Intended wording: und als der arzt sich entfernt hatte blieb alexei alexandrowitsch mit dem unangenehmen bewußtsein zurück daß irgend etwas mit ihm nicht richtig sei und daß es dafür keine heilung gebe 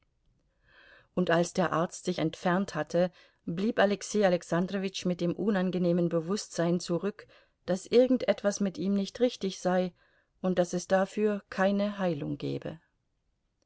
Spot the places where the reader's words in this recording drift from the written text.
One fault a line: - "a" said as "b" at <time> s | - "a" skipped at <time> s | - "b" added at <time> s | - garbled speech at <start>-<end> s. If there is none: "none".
none